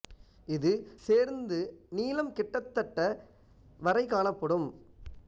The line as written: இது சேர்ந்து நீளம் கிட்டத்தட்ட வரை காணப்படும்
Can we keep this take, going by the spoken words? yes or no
yes